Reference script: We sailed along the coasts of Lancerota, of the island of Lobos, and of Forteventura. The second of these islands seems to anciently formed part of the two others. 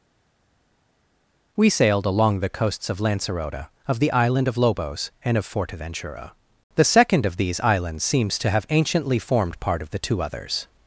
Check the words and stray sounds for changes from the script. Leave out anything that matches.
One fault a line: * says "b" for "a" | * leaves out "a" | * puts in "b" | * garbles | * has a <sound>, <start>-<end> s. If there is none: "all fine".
* puts in "have"